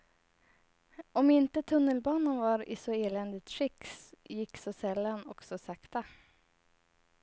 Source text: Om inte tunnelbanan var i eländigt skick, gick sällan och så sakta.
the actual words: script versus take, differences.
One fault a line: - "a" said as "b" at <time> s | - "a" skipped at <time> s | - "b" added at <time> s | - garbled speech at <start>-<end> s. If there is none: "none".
- "så" added at 2.8 s
- "så" added at 4.5 s